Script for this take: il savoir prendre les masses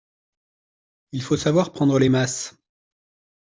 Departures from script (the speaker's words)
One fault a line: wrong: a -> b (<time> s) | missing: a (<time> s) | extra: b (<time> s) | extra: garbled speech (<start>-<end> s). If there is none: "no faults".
extra: faut (1.2 s)